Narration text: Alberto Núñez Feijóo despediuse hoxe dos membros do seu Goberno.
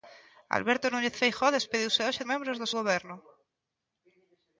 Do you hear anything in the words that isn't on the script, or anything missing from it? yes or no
yes